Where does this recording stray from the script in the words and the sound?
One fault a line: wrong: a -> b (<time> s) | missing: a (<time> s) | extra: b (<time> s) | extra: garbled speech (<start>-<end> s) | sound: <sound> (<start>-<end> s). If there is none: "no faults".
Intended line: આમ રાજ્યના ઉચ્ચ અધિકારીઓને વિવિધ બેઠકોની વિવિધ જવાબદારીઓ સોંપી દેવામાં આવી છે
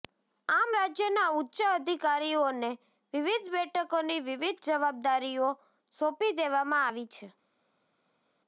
no faults